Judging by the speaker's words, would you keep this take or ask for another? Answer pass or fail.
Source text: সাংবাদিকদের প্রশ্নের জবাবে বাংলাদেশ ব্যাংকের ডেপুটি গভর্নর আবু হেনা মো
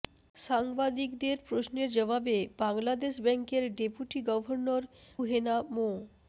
fail